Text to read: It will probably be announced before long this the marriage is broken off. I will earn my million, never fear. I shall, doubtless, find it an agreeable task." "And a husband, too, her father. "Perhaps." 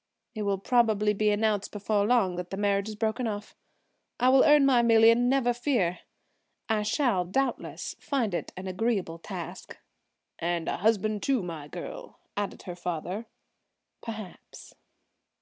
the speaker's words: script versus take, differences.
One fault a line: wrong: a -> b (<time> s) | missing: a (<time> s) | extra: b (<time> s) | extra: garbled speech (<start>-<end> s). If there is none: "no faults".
wrong: this -> that (2.4 s)
extra: my girl added (11.4 s)